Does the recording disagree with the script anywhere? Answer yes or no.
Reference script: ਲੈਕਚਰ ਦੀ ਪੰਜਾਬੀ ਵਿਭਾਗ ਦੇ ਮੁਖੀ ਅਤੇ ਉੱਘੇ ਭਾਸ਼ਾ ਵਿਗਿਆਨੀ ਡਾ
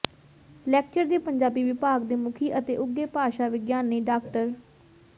no